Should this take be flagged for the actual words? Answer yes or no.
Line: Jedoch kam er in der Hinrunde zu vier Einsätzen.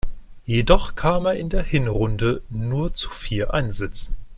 yes